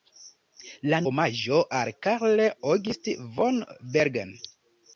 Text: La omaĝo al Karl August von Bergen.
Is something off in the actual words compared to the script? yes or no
no